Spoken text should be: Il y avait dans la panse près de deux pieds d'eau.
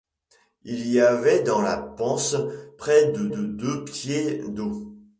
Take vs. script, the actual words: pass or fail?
fail